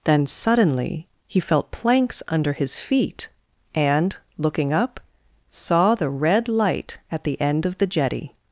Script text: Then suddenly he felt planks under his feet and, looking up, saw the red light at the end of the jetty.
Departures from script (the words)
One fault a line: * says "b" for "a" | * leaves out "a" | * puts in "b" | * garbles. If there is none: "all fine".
all fine